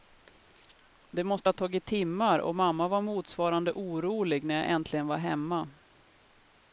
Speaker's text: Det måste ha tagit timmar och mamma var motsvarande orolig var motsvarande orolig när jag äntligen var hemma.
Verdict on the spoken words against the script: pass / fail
fail